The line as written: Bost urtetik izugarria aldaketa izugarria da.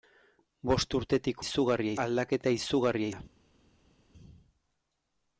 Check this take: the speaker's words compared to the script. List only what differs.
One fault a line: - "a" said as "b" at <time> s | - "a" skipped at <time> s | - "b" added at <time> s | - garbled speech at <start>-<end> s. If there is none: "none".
none